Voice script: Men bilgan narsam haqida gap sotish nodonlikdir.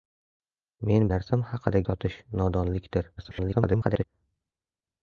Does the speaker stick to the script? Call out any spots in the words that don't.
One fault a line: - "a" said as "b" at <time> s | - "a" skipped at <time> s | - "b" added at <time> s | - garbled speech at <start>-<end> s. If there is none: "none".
- "bilgan" skipped at 1.0 s
- "gap" skipped at 1.8 s
- garbled speech at 3.2-4.0 s